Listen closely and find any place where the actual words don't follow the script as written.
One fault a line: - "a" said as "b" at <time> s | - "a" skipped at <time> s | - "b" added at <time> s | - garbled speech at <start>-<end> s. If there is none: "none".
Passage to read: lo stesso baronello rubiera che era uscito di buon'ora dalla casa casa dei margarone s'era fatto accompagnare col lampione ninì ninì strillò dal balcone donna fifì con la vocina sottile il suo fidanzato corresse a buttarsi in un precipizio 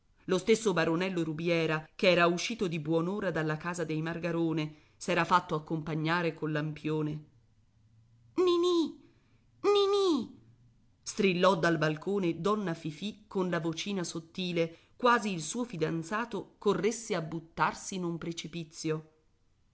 - "casa" skipped at 3.8 s
- "quasi" added at 14.9 s